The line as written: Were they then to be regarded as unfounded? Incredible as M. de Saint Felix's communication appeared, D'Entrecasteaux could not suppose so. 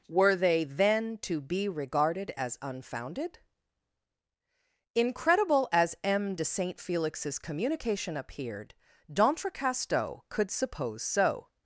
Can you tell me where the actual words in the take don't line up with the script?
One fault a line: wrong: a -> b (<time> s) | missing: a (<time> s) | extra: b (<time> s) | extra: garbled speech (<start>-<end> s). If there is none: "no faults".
missing: not (10.5 s)